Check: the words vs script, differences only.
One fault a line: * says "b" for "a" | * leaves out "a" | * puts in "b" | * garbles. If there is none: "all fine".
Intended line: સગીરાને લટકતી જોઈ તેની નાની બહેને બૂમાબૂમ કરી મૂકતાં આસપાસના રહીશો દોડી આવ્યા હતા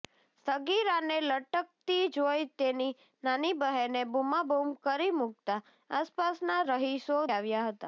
* leaves out "દોડી"